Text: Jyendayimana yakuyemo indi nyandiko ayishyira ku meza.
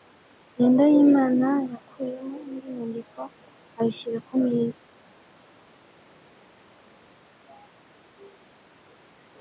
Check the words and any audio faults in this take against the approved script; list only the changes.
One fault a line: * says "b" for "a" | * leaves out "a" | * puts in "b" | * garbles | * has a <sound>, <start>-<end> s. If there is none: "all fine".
all fine